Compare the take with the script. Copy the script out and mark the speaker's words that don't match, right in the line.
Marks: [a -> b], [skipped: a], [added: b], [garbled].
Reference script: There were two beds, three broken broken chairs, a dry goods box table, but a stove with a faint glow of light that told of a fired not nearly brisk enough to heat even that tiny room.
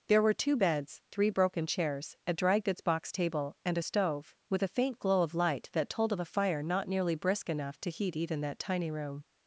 There were two beds, three broken [skipped: broken] chairs, a dry goods box table, [but -> and] a stove with a faint glow of light that told of a [fired -> fire] not nearly brisk enough to heat even that tiny room.